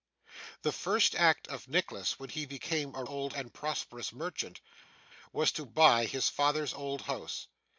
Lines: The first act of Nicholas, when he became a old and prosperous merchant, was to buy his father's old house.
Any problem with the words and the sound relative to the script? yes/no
no